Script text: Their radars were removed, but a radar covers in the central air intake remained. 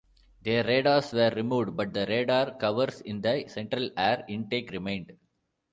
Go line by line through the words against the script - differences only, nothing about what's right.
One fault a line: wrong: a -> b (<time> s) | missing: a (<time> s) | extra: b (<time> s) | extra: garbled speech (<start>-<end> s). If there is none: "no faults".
wrong: a -> the (1.9 s)